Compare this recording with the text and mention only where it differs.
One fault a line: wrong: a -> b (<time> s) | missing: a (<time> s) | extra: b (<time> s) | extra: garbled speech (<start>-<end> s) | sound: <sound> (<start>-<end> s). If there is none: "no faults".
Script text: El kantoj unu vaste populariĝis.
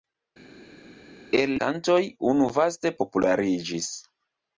no faults